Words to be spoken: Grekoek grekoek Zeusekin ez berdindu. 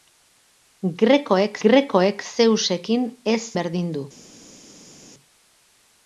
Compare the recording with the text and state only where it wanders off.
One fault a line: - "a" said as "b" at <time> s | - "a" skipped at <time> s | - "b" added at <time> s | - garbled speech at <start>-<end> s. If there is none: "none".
none